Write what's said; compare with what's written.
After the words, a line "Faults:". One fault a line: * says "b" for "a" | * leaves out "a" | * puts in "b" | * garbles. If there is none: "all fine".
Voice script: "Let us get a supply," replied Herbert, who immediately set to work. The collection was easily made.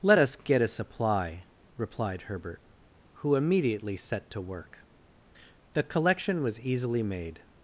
"Let us get a supply," replied Herbert, who immediately set to work. The collection was easily made.
Faults:
all fine